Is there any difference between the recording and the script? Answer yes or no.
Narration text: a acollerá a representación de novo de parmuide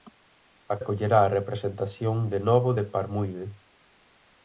no